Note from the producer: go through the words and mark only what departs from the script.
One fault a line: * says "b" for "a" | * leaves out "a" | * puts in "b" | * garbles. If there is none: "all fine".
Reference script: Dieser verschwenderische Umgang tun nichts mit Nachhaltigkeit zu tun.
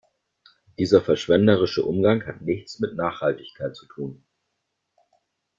* says "hat" for "tun"